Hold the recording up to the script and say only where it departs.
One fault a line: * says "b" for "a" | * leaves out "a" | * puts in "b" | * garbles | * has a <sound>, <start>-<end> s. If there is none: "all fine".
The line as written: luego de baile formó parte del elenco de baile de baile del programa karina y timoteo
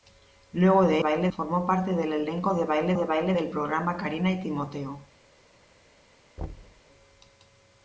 * has a thud, 6.4-6.8 s